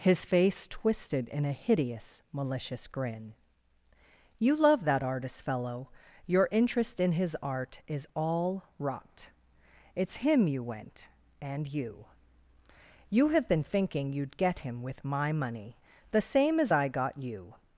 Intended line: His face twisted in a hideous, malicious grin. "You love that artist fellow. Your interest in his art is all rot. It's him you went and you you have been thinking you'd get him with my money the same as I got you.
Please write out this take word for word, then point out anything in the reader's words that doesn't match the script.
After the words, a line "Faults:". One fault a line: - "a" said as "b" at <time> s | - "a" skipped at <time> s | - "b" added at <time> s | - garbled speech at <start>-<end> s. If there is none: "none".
His face twisted in a hideous, malicious grin. "You love that artist fellow. Your interest in his art is all rot. It's him you went and you you have been thinking you'd get him with my money the same as I got you.
Faults:
none